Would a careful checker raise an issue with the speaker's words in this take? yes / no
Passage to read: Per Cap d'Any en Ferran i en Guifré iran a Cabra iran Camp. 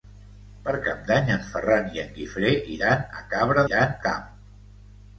no